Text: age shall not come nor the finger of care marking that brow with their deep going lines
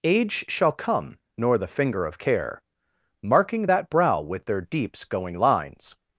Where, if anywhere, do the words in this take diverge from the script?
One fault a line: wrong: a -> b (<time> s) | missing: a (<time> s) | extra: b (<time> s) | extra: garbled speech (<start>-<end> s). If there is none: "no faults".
missing: not (0.7 s)
wrong: deep -> deeps (4.6 s)